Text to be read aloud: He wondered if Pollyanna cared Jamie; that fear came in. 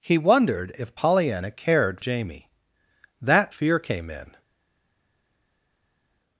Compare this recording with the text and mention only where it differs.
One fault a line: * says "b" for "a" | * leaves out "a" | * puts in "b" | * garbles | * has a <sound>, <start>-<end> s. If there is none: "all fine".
all fine